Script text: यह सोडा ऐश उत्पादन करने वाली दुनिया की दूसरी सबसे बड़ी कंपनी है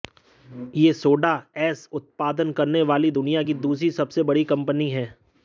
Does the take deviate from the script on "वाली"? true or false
false